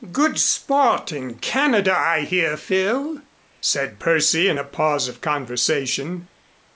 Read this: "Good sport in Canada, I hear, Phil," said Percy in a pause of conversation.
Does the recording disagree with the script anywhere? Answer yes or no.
no